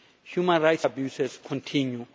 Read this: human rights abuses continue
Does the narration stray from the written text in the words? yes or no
no